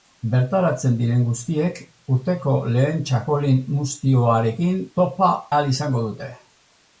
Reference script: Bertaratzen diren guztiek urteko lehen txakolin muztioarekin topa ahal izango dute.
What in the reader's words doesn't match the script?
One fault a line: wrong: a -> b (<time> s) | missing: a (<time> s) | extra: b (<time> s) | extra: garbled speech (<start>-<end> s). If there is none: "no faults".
no faults